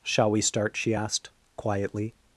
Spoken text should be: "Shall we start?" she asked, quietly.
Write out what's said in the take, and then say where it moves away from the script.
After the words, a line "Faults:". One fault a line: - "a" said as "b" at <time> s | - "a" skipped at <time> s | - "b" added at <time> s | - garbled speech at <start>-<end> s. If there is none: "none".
"Shall we start?" she asked, quietly.
Faults:
none